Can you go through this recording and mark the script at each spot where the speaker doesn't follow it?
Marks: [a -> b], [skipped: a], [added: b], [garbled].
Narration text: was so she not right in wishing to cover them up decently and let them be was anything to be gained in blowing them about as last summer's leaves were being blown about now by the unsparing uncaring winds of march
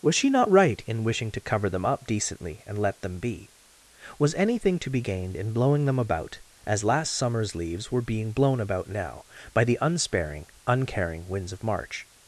was [skipped: so] she not right in wishing to cover them up decently and let them be was anything to be gained in blowing them about as last summer's leaves were being blown about now by the unsparing uncaring winds of march